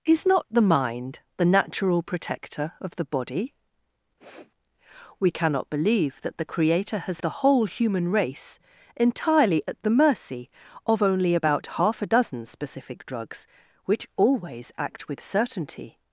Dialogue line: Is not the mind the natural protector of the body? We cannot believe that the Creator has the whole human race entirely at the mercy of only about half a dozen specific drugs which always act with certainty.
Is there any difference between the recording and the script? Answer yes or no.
no